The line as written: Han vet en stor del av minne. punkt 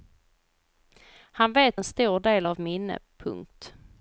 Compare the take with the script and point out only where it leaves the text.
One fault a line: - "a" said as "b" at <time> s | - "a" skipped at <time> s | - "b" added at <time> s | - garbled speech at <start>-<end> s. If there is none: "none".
none